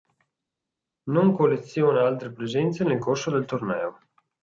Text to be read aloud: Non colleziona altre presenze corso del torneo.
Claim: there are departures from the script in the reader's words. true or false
true